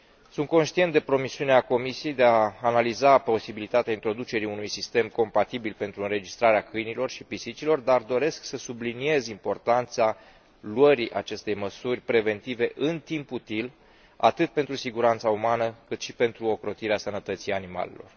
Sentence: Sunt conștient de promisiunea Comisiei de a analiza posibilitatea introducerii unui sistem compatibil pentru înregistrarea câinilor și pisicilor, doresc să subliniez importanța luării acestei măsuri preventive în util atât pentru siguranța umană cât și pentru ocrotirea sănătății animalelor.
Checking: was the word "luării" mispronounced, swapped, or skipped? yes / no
no